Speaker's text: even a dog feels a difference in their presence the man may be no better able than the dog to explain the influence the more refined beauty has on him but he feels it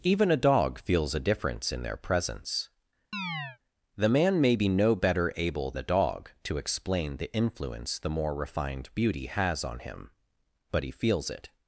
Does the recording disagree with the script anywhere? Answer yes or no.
yes